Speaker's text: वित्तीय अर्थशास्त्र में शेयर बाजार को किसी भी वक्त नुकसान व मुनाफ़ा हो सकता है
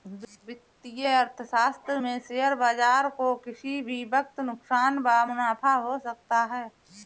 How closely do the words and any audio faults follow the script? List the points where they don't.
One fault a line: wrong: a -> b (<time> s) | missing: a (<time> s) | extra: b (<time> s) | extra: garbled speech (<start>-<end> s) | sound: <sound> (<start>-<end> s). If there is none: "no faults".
no faults